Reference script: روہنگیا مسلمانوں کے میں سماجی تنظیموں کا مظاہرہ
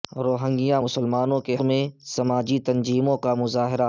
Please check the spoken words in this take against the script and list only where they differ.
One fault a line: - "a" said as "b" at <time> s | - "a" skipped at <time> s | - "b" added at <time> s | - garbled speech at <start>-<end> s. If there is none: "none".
none